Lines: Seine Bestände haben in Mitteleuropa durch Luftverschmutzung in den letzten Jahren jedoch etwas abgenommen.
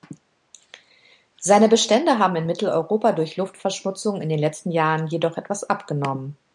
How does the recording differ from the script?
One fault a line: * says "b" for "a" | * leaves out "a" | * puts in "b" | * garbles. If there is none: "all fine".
all fine